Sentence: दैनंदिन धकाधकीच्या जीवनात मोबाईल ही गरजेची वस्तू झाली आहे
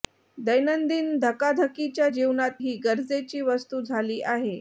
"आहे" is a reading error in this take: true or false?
false